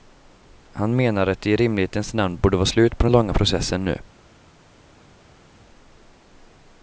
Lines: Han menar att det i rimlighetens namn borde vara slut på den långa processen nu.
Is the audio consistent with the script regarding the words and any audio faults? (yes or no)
yes